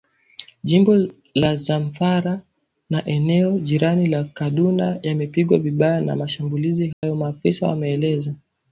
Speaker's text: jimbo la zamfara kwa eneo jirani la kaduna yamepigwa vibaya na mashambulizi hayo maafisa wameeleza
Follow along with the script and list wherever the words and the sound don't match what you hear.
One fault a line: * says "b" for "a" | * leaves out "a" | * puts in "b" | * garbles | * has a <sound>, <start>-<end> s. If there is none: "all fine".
* says "na" for "kwa"
* has a dropout, 6.9-7.0 s